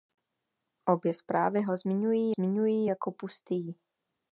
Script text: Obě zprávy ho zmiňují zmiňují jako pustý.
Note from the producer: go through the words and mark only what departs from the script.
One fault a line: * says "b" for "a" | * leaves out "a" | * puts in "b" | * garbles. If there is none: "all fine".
all fine